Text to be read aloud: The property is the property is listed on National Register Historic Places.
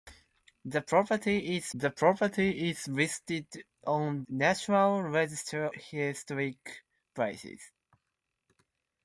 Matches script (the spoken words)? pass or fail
pass